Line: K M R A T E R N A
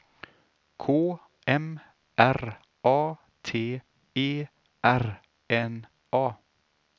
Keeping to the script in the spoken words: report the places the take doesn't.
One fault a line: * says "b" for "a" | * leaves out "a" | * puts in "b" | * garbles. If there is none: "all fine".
all fine